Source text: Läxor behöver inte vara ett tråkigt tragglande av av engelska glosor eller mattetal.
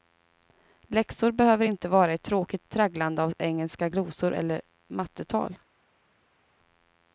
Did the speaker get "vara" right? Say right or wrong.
right